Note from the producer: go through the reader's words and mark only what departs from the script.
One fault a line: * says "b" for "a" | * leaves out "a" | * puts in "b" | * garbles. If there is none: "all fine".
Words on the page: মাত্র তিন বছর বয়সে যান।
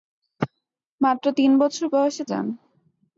all fine